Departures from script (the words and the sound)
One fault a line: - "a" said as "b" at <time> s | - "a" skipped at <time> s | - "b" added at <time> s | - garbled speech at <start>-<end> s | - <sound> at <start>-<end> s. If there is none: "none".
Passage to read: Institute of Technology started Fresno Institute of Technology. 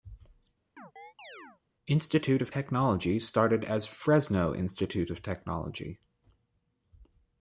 - chirp at 0.8-1.6 s
- "as" added at 3.6 s